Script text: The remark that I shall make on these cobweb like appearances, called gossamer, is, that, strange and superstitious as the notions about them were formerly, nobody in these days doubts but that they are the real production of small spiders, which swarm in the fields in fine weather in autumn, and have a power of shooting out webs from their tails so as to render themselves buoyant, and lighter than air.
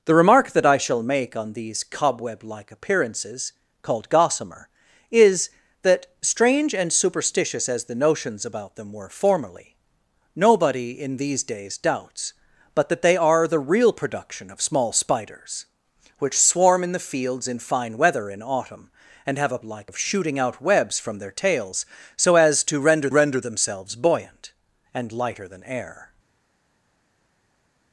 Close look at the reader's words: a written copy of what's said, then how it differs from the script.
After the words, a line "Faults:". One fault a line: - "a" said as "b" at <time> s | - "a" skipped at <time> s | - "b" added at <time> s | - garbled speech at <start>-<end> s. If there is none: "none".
The remark that I shall make on these cobweb like appearances, called gossamer, is, that, strange and superstitious as the notions about them were formerly, nobody in these days doubts but that they are the real production of small spiders, which swarm in the fields in fine weather in autumn, and have a like of shooting out webs from their tails so as to render render themselves buoyant, and lighter than air.
Faults:
- "power" said as "like" at 19.6 s
- "render" added at 23.1 s